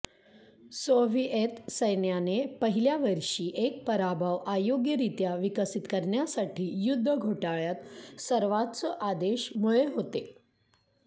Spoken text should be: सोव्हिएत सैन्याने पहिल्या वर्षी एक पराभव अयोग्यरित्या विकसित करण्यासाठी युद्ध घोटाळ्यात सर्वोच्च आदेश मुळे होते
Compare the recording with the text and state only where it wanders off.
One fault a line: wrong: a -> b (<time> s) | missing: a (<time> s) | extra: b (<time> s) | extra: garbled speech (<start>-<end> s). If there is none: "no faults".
no faults